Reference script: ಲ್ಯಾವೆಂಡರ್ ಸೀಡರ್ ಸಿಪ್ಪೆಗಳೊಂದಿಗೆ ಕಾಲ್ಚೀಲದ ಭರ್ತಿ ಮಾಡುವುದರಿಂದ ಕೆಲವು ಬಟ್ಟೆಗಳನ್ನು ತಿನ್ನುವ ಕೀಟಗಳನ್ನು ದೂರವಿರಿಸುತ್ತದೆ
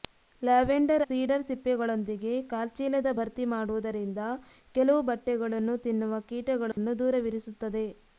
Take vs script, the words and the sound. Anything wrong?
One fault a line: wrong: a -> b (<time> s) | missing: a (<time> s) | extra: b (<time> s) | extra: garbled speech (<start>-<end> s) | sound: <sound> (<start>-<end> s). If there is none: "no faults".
sound: dropout (6.7-6.8 s)